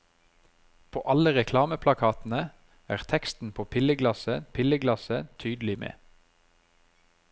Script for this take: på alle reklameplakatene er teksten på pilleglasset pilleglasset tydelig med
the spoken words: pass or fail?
pass